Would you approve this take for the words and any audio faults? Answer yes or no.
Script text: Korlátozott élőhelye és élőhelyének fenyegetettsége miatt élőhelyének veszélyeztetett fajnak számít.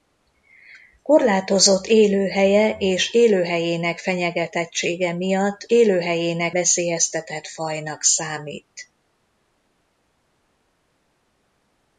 yes